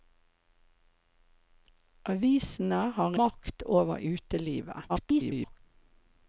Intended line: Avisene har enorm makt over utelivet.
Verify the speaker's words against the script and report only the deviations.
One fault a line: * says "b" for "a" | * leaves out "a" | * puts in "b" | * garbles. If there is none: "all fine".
* leaves out "enorm"
* garbles